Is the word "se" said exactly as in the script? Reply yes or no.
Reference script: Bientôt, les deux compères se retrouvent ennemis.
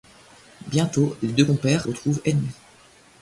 no